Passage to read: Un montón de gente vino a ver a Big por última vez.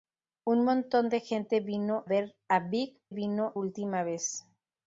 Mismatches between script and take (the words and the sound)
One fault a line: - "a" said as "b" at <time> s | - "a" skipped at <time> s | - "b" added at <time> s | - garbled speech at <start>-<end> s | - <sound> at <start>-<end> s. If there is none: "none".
- "a" skipped at 2.0 s
- "por" said as "vino" at 3.1 s